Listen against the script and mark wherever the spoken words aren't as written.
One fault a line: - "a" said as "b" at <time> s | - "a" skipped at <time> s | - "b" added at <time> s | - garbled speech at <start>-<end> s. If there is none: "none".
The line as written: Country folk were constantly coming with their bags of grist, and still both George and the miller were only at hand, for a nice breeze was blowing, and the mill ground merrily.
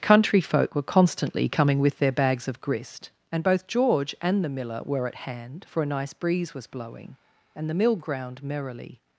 - "still" skipped at 3.5 s
- "only" skipped at 5.1 s